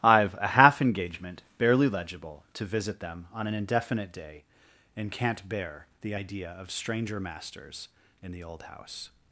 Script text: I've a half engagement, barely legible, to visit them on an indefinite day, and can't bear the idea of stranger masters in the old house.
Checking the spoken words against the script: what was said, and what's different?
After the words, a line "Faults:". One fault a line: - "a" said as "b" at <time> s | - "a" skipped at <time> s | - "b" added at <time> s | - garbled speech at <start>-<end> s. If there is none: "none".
I've a half engagement, barely legible, to visit them on an indefinite day, and can't bear the idea of stranger masters in the old house.
Faults:
none